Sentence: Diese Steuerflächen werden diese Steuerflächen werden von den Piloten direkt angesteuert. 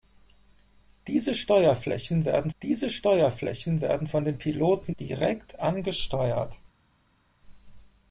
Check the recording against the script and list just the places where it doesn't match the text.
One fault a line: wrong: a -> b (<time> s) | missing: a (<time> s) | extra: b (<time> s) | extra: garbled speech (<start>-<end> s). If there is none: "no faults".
no faults